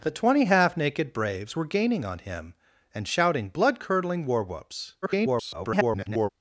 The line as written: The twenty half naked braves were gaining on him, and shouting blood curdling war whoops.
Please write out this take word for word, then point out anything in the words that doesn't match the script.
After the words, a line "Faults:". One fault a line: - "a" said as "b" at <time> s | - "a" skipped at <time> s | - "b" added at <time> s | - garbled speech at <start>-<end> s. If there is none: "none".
The twenty half naked braves were gaining on him, and shouting blood curdling war whoops. [garbled]
Faults:
- garbled speech at 5.0-6.3 s